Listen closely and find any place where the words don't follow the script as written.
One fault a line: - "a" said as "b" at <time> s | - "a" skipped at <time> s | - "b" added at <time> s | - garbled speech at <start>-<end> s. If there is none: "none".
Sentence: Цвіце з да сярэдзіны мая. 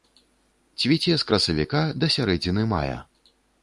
- "красавіка" added at 1.3 s